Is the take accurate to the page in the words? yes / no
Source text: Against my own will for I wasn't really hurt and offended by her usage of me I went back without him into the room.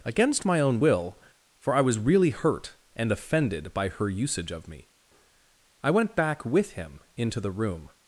no